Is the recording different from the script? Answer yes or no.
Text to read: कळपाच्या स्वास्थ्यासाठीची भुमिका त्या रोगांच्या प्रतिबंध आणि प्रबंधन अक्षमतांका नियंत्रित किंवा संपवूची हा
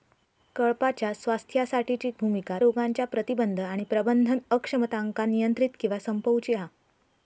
yes